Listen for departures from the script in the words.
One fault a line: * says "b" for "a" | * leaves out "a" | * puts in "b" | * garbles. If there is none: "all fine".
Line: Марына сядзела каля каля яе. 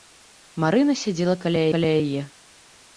all fine